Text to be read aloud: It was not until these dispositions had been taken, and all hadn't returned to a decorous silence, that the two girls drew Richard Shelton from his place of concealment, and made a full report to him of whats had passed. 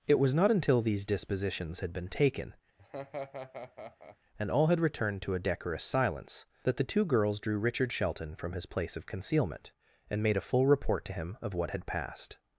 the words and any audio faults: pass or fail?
fail